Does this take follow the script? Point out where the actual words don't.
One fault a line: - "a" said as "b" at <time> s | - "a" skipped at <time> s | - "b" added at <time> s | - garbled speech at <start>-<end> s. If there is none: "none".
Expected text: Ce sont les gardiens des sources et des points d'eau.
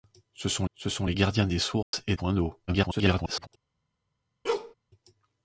- "ce sont" added at 0.7 s
- "des" skipped at 2.1 s
- garbled speech at 2.7-3.5 s